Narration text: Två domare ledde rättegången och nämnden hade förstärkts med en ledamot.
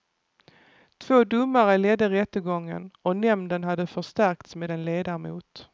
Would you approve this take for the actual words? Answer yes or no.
yes